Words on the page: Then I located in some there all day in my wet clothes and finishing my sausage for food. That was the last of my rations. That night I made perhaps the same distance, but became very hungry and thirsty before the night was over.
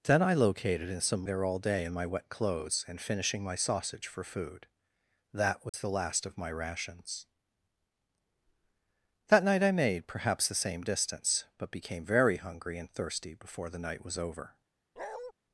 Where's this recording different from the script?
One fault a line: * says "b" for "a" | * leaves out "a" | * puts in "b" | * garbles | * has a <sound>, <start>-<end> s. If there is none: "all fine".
* has a dropout, 5.7-5.7 s
* has a bark, 15.0-15.3 s